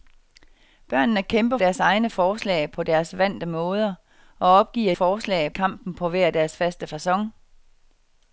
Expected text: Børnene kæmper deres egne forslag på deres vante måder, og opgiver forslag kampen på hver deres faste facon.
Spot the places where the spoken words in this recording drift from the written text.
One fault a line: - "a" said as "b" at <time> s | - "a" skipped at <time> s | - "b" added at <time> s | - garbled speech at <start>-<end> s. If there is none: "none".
none